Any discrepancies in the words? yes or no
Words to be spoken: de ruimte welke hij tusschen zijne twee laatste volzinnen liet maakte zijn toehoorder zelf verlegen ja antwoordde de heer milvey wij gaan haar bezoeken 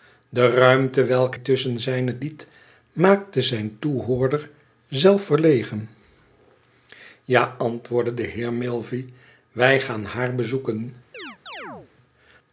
yes